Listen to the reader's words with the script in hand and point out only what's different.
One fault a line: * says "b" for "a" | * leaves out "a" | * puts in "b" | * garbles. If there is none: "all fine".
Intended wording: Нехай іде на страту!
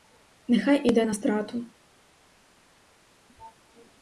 all fine